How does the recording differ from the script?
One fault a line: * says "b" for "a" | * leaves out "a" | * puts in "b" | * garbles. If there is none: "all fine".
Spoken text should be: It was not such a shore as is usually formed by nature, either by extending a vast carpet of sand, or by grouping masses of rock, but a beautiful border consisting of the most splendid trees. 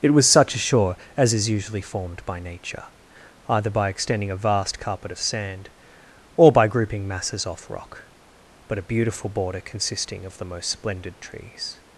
* leaves out "not"
* says "off" for "of"